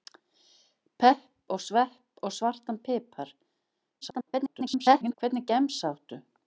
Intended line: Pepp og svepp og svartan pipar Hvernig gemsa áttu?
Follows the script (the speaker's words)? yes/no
no